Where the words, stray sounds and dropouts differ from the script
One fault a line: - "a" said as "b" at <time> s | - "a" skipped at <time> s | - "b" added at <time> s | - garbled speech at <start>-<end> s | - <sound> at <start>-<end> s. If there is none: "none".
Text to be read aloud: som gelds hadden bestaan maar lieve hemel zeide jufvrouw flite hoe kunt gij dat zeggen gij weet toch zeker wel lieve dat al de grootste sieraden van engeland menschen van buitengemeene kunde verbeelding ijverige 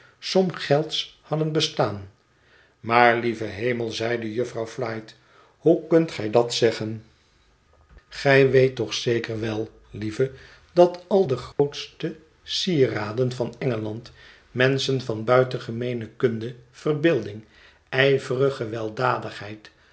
- dropout at 11.5-11.6 s